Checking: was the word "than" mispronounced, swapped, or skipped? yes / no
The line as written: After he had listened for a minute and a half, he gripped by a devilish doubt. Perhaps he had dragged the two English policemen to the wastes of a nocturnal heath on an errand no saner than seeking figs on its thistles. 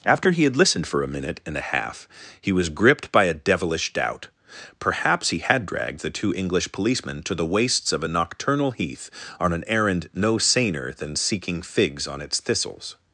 no